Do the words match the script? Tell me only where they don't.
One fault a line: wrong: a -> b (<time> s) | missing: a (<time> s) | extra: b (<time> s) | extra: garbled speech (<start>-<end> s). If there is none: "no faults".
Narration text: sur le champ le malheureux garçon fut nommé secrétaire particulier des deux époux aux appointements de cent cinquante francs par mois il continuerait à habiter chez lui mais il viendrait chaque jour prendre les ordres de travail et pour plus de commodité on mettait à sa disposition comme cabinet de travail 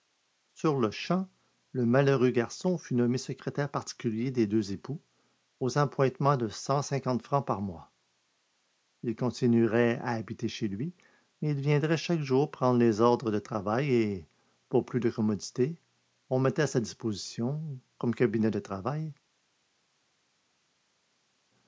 no faults